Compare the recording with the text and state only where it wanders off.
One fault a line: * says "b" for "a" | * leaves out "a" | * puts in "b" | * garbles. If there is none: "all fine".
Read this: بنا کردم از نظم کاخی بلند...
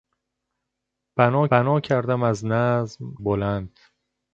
* puts in "بنا"
* leaves out "کاخی"